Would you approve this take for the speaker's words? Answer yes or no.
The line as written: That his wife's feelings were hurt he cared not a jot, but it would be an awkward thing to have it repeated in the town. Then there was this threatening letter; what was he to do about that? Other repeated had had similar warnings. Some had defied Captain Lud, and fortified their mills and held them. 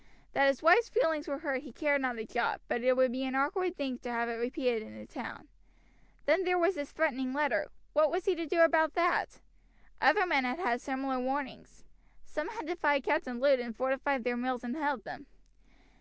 no